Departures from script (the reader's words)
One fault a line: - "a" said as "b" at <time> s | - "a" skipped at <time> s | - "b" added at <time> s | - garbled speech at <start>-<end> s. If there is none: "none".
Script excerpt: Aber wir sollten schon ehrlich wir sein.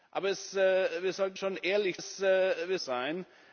none